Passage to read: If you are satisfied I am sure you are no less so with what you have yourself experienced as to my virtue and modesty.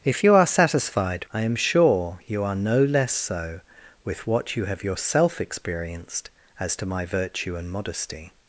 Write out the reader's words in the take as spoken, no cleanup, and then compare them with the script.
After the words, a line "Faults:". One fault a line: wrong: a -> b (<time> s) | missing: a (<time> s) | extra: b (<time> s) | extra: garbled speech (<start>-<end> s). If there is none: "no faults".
If you are satisfied I am sure you are no less so with what you have yourself experienced as to my virtue and modesty.
Faults:
no faults